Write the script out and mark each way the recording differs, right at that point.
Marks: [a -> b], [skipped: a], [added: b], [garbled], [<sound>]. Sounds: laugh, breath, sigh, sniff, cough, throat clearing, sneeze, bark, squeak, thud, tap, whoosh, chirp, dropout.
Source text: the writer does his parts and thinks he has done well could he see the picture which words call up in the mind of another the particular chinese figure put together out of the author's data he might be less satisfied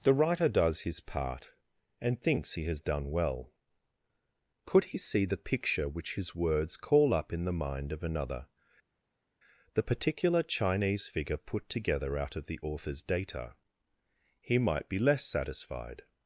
the writer does his [parts -> part] and thinks he has done well could he see the picture which [added: his] words call up in the mind of another the particular chinese figure put together out of the author's data he might be less satisfied